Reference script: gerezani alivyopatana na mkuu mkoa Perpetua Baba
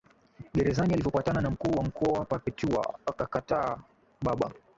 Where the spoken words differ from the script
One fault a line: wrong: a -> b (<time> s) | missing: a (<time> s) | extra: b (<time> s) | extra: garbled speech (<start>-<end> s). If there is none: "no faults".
extra: wa (1.7 s)
extra: akakataa (3.0 s)